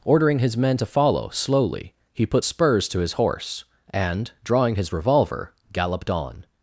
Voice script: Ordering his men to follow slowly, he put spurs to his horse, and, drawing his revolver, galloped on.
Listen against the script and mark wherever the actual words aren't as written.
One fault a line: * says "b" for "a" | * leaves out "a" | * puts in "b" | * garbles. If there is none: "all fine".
all fine